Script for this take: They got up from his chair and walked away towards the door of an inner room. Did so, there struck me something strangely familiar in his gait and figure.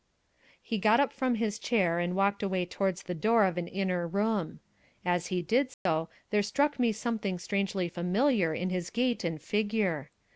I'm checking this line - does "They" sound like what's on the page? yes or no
no